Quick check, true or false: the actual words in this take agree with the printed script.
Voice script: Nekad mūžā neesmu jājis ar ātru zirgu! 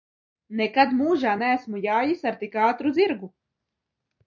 false